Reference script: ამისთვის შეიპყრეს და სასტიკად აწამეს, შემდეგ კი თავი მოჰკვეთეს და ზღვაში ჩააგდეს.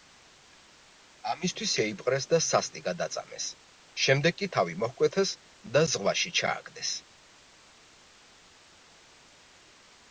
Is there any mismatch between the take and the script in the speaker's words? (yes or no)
no